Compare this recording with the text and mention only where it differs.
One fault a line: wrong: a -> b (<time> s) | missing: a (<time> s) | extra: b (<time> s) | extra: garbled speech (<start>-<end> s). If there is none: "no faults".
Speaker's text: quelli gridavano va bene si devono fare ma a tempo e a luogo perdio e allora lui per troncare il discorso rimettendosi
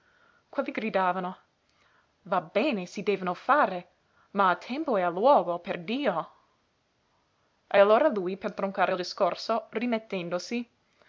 no faults